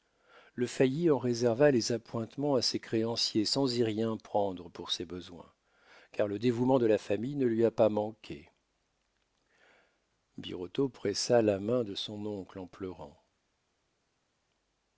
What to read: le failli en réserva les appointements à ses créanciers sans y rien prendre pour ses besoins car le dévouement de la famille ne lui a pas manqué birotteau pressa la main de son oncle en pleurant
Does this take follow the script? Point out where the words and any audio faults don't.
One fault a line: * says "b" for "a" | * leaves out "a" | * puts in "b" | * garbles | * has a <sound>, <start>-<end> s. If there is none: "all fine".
all fine